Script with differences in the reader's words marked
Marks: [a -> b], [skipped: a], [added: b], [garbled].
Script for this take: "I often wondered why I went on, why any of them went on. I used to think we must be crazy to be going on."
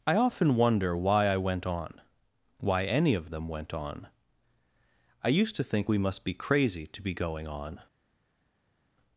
"I often [wondered -> wonder] why I went on, why any of them went on. I used to think we must be crazy to be going on."